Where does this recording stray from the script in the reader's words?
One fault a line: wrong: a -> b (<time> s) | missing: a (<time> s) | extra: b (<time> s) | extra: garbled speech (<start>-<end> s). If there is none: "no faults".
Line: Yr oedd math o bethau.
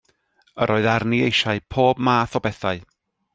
extra: arni eisiau pob (0.9 s)